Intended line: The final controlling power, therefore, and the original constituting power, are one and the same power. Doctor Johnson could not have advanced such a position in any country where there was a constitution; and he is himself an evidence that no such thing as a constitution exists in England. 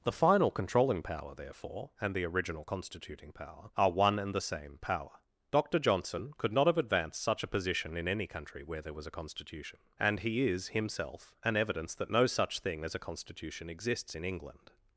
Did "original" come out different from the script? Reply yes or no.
no